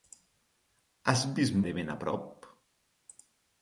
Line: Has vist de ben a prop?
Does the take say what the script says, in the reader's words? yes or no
yes